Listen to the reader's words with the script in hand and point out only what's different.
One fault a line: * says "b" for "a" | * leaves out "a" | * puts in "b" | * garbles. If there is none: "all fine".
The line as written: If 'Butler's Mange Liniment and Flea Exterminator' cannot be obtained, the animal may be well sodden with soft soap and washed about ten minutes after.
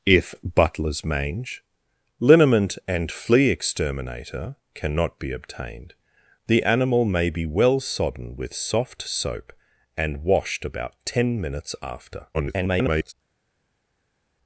* garbles